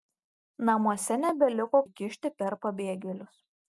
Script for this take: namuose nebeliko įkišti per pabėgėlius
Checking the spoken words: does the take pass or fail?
pass